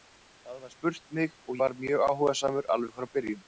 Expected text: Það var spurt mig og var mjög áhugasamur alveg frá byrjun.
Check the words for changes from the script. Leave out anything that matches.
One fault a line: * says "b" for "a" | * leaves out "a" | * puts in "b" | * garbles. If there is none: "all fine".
all fine